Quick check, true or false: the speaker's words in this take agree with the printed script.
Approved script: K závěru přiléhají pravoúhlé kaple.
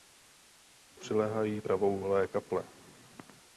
false